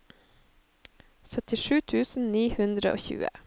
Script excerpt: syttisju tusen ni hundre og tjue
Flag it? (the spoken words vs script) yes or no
no